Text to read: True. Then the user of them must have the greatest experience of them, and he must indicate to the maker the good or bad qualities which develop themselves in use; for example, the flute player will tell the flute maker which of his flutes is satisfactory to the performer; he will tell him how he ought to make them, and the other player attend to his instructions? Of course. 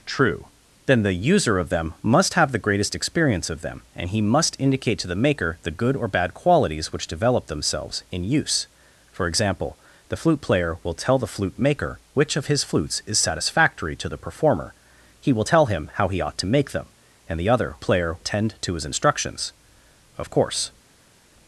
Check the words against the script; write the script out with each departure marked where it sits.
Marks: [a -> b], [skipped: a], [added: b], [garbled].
True. Then the user of them must have the greatest experience of them, and he must indicate to the maker the good or bad qualities which develop themselves in use; for example, the flute player will tell the flute maker which of his flutes is satisfactory to the performer; he will tell him how he ought to make them, and the other player attend to his instructions? Of course.